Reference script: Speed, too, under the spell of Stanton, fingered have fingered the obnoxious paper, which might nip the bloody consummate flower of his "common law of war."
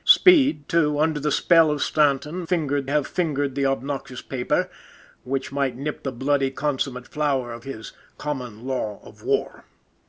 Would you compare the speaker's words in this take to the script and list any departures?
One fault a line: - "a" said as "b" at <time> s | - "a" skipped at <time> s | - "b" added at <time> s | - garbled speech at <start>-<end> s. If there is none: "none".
none